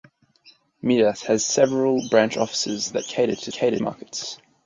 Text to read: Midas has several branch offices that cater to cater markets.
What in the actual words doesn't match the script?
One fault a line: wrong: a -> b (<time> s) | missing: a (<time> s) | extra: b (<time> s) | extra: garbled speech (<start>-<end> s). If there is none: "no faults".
no faults